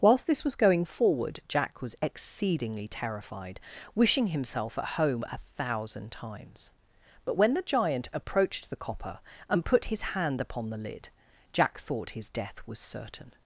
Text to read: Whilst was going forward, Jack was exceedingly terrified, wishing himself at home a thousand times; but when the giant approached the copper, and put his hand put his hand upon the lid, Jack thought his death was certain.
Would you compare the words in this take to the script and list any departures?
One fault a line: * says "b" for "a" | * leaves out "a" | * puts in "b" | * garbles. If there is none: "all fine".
* puts in "this"
* leaves out "put his hand"